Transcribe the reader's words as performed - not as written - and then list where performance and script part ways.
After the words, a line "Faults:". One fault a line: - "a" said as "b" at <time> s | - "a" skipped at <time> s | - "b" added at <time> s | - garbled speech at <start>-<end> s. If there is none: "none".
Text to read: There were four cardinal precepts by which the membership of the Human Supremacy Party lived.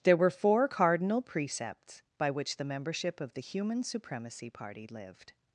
There were four cardinal precepts by which the membership of the Human Supremacy Party lived.
Faults:
none